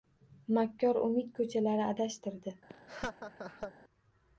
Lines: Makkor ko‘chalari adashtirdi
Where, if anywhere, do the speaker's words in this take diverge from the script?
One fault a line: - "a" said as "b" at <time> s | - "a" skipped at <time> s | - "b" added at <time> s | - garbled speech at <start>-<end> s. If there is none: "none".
- "umid" added at 1.1 s